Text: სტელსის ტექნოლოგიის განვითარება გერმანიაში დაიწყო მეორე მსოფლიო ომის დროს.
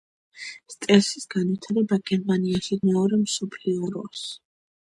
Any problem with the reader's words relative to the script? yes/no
yes